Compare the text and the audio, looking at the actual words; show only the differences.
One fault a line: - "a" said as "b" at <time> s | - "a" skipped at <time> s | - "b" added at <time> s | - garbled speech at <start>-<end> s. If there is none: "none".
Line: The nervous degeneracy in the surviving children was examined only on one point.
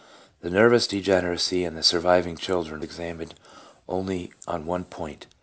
- "was" skipped at 2.9 s